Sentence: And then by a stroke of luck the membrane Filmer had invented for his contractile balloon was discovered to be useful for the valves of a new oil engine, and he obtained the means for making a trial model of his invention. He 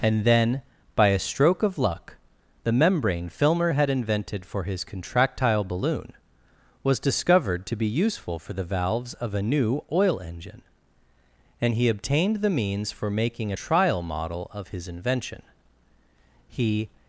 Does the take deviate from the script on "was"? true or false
false